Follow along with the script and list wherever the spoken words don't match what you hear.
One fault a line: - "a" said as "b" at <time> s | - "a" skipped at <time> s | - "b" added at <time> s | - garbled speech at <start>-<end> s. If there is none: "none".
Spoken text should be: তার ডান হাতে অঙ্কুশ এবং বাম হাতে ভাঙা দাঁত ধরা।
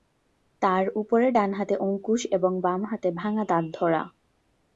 - "উপরের" added at 0.9 s